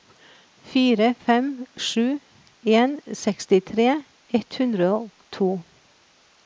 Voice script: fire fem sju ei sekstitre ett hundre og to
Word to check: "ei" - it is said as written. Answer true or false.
false